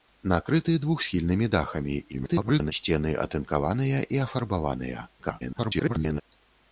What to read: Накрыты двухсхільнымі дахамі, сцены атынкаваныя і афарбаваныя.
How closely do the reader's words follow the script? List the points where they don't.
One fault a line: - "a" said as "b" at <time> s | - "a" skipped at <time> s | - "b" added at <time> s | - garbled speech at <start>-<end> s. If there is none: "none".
- garbled speech at 2.1-2.7 s
- garbled speech at 5.2-6.2 s